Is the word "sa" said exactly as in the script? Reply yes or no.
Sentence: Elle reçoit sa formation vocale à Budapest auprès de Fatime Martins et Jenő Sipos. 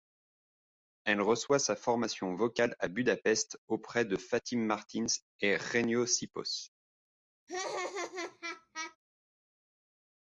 yes